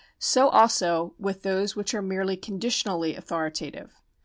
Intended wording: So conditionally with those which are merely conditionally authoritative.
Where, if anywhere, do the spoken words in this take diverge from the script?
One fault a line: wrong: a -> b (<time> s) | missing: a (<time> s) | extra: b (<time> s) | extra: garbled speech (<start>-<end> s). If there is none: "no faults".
wrong: conditionally -> also (0.5 s)